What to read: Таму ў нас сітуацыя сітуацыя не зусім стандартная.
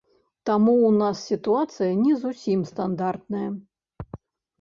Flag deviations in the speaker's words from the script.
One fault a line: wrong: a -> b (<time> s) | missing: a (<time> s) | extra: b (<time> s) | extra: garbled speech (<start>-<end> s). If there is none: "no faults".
missing: сітуацыя (1.9 s)